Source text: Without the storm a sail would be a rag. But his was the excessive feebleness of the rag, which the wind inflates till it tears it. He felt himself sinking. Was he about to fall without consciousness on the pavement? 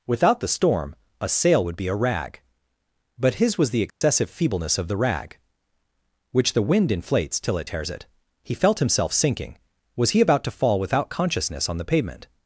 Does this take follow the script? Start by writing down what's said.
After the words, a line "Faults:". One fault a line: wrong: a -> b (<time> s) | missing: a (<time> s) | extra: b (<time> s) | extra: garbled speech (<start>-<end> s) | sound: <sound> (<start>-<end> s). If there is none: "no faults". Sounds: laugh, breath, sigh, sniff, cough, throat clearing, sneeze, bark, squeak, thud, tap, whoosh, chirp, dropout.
Without the storm a sail would be a rag. But his was the excessive feebleness of the rag, which the wind inflates till it tears it. He felt himself sinking. Was he about to fall without consciousness on the pavement?
Faults:
sound: dropout (3.9-4.0 s)